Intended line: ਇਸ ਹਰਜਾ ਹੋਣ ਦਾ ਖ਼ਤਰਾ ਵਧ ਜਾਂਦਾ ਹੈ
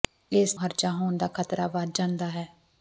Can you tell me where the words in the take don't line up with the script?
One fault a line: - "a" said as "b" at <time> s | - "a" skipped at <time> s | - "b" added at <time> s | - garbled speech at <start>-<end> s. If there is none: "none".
none